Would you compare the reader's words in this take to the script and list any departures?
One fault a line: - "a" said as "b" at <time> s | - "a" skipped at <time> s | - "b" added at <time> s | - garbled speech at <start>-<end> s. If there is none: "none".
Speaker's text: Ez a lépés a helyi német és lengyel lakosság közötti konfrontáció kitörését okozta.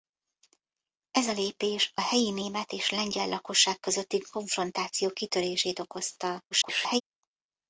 - garbled speech at 6.5-7.0 s